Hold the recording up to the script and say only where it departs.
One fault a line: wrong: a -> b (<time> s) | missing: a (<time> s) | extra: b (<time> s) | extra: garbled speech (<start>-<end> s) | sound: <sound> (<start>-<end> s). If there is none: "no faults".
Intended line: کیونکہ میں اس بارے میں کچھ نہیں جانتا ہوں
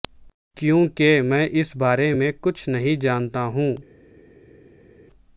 no faults